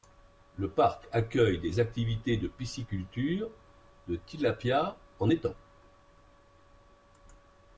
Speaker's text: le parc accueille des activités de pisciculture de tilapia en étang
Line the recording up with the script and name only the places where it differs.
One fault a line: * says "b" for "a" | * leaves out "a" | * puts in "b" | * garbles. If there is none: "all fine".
all fine